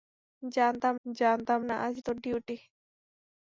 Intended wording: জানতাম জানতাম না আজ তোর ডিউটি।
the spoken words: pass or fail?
pass